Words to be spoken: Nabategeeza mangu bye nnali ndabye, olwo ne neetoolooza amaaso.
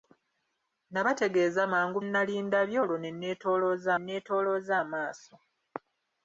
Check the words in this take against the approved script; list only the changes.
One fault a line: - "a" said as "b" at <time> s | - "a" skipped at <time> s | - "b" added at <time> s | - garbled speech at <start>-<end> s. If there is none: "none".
- "bye" skipped at 2.0 s
- "neetoolooza" added at 4.0 s